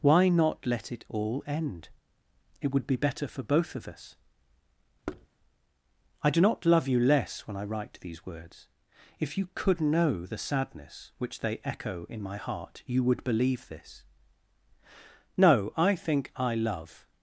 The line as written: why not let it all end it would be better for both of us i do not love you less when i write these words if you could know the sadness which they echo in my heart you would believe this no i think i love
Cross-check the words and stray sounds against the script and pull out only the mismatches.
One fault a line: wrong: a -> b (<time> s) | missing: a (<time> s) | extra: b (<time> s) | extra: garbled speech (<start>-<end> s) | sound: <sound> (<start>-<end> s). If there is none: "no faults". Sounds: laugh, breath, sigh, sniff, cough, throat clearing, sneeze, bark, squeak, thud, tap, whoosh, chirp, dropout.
sound: thud (5.1-5.3 s)